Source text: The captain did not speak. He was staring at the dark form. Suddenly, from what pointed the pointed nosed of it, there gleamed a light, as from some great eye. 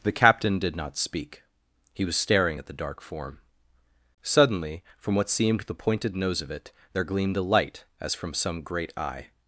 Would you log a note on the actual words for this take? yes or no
yes